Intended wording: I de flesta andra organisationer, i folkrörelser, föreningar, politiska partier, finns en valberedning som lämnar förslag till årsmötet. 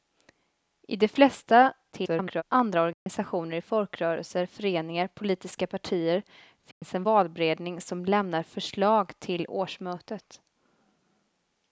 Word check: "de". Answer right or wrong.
right